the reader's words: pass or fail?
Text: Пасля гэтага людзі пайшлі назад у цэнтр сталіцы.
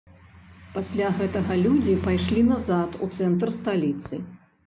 pass